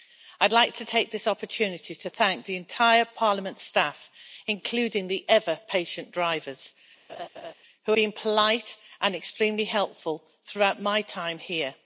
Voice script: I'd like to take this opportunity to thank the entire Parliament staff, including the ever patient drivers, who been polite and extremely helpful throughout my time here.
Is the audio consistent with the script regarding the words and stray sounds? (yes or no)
no